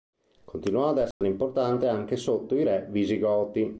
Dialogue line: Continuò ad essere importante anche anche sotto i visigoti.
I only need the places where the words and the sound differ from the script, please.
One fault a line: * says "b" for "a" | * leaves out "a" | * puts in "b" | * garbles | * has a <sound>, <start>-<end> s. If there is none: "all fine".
* has a dropout, 1.1-1.2 s
* leaves out "anche"
* puts in "re"